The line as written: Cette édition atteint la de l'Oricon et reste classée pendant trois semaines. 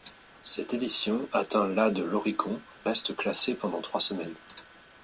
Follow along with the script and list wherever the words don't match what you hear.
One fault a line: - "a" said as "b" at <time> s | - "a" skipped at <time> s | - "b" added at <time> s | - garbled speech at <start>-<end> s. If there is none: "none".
- "et" skipped at 2.6 s